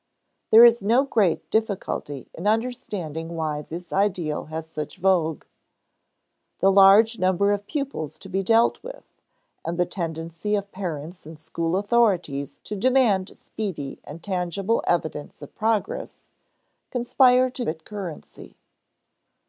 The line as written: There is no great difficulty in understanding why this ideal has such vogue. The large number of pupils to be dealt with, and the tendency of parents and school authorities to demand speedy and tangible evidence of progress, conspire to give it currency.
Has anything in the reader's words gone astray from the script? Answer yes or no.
yes